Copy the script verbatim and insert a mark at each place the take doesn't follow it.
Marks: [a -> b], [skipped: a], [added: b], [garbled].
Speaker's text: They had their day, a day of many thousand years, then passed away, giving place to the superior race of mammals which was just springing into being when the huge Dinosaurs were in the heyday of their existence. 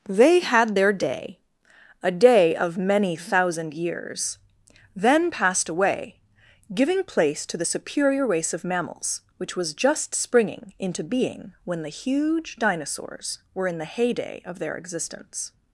They had their day, a day of many thousand years, then passed away, giving place to the superior race of mammals which was just springing into being when the huge Dinosaurs were in the heyday of their existence.